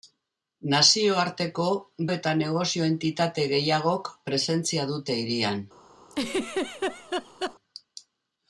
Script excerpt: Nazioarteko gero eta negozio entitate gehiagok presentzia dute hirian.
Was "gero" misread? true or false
true